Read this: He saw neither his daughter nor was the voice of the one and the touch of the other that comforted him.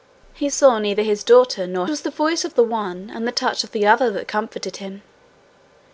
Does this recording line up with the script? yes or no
yes